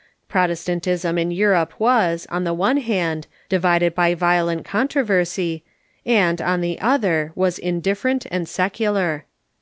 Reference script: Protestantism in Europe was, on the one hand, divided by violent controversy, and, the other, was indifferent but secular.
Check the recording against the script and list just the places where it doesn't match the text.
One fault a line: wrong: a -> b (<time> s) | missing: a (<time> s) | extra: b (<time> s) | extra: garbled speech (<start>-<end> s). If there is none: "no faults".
extra: on (6.4 s)
wrong: but -> and (8.3 s)